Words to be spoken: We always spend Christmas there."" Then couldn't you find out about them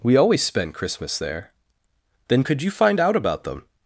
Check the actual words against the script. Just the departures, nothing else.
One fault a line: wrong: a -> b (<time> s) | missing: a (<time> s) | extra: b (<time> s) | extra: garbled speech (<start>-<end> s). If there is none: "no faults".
wrong: couldn't -> could (2.4 s)